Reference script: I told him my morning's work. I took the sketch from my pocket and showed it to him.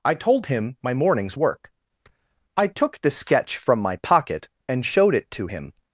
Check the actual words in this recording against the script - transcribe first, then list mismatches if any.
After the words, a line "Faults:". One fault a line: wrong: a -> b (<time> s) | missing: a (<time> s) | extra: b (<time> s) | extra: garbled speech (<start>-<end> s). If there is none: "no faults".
I told him my morning's work. I took the sketch from my pocket and showed it to him.
Faults:
no faults